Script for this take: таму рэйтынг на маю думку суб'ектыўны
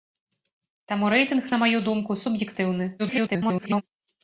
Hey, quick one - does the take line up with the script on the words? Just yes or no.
no